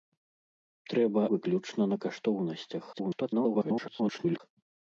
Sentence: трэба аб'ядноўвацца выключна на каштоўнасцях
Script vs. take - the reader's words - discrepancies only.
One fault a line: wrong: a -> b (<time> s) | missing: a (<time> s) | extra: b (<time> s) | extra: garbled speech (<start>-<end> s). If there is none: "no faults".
missing: аб'ядноўвацца (1.2 s)
extra: garbled speech (2.9-4.4 s)